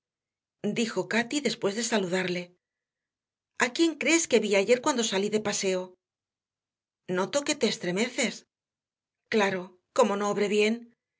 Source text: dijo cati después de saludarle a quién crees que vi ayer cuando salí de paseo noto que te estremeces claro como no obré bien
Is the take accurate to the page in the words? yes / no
yes